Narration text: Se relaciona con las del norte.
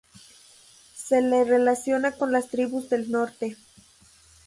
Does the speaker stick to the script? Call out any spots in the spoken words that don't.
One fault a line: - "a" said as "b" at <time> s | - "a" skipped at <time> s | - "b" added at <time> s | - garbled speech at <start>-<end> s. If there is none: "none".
- "le" added at 1.2 s
- "tribus" added at 2.5 s